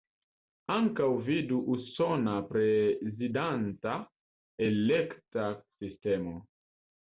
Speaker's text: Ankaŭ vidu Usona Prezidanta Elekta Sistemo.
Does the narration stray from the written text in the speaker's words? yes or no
no